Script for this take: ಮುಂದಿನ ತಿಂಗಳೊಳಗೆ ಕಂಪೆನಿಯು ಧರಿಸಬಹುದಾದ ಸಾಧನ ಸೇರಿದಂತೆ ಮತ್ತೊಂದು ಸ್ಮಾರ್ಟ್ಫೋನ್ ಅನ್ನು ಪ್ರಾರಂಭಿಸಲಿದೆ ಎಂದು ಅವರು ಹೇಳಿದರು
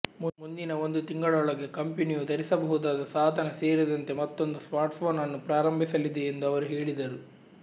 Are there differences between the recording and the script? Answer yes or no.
yes